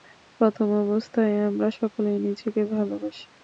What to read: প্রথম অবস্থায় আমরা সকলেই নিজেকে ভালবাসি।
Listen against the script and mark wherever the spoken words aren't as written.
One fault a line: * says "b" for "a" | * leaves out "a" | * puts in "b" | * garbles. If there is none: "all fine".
all fine